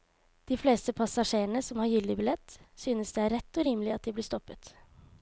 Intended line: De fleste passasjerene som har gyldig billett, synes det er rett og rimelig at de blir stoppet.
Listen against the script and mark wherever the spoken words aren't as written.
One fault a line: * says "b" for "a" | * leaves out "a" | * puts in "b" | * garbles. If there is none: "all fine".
all fine